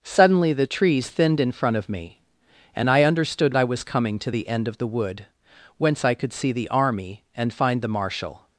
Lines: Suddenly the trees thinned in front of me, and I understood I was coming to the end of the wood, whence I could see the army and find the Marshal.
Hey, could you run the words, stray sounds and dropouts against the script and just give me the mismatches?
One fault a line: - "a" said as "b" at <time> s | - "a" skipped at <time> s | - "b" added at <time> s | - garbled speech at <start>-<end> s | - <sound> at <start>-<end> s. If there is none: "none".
none